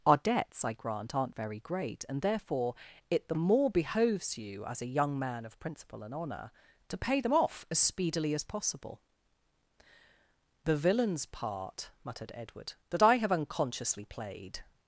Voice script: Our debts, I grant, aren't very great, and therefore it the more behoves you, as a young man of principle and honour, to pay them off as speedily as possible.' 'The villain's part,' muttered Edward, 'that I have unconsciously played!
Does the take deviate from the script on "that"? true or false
false